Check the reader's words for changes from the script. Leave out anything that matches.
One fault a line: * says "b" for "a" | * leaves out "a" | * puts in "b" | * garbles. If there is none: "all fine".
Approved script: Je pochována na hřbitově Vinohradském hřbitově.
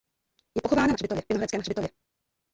all fine